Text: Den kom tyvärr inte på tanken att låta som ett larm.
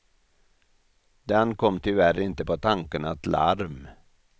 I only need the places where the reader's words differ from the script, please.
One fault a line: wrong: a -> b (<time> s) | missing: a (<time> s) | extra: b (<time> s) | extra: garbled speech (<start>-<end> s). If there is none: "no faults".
missing: låta som ett (3.3 s)